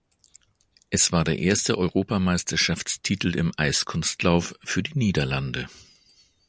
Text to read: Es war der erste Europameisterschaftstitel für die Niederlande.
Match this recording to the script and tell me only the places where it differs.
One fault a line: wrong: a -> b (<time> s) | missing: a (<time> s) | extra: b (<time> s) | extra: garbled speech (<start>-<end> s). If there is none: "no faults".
extra: im Eiskunstlauf (3.3 s)